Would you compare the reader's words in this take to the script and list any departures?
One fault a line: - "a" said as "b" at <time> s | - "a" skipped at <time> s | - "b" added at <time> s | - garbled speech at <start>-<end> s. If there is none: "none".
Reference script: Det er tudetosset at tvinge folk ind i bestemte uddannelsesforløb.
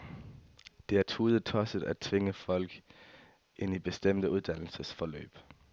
none